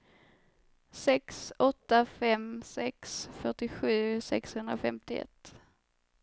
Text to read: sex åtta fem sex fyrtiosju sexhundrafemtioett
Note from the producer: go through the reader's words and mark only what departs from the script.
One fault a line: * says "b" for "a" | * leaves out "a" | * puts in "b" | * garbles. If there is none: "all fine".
all fine